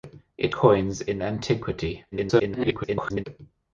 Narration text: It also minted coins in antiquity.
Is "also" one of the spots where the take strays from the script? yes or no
yes